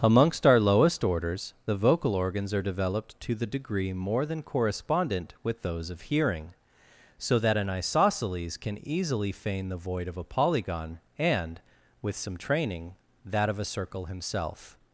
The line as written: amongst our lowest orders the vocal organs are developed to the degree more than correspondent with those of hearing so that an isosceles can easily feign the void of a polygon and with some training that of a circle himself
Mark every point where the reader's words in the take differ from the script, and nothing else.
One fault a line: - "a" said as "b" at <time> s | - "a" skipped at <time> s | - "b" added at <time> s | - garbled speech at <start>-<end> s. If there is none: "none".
none